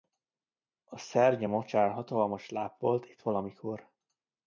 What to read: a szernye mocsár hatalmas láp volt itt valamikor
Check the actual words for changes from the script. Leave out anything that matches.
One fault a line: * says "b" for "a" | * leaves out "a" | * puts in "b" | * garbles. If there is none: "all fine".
all fine